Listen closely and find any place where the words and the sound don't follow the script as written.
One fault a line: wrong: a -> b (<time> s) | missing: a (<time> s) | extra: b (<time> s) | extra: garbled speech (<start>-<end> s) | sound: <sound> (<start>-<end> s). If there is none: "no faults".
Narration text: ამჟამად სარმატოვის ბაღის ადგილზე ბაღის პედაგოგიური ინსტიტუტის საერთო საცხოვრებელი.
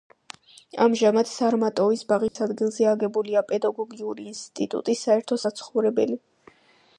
sound: dropout (2.3-2.4 s)
wrong: ბაღის -> აგებულია (2.9 s)